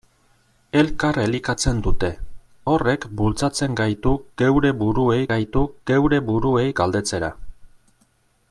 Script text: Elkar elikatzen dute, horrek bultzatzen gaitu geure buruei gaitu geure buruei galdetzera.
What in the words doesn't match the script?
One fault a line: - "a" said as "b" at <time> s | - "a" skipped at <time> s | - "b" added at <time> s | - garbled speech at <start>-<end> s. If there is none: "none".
none